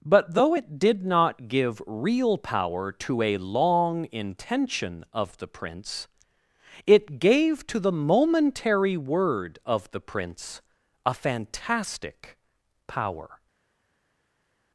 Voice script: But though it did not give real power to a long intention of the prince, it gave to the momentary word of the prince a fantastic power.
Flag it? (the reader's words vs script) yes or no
no